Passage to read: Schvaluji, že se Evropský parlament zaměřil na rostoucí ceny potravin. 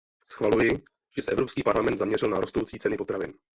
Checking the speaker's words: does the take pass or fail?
pass